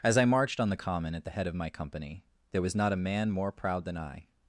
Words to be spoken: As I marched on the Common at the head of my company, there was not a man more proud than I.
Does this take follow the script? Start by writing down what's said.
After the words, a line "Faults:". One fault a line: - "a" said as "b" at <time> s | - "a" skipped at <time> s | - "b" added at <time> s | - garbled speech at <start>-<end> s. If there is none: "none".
As I marched on the Common at the head of my company, there was not a man more proud than I.
Faults:
none